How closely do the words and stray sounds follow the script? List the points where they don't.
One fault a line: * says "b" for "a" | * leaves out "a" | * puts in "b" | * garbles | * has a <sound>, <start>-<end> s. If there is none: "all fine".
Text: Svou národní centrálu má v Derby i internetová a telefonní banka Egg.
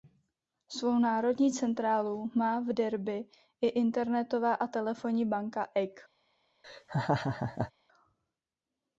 * has a laugh, 6.6-7.7 s